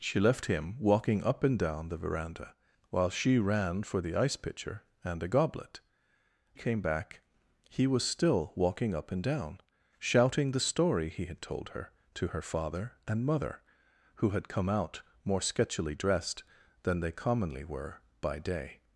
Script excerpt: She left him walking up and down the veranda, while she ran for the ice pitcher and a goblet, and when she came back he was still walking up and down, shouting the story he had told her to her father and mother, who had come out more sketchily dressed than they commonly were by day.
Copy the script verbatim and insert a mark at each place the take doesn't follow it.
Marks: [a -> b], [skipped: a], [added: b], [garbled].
She left him walking up and down the veranda, while she ran for the ice pitcher and a goblet, [skipped: and when she] came back he was still walking up and down, shouting the story he had told her to her father and mother, who had come out more sketchily dressed than they commonly were by day.